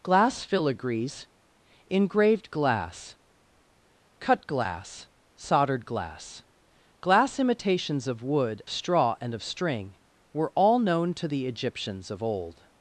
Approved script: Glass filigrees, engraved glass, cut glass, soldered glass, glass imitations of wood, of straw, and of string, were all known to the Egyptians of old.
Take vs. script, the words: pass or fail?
fail